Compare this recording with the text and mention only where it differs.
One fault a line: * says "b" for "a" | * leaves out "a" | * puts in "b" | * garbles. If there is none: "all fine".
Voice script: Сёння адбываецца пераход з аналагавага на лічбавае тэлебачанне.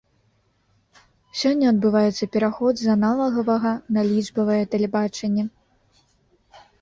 all fine